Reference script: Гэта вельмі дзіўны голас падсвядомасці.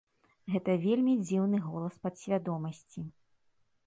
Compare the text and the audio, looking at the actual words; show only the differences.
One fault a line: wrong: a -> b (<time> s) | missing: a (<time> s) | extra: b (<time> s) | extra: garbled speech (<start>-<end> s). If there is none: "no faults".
no faults